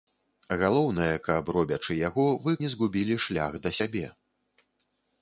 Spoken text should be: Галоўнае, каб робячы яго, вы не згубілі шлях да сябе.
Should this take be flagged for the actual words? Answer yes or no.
no